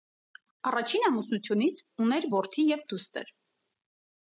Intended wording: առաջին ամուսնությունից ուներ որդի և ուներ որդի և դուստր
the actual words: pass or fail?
fail